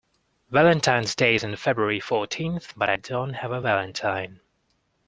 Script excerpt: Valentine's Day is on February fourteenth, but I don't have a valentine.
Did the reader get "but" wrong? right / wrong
right